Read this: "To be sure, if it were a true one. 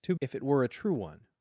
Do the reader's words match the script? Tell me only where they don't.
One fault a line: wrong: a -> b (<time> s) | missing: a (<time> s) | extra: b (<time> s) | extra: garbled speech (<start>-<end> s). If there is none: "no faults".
missing: be sure (0.1 s)